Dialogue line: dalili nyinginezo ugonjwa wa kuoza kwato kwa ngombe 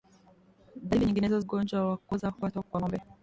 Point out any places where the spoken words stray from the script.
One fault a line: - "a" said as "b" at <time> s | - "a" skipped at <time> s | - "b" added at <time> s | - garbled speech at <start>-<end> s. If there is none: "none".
none